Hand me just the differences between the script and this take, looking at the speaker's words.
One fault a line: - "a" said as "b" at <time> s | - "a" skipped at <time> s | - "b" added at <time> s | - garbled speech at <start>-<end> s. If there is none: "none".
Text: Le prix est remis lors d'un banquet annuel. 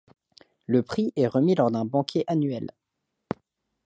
none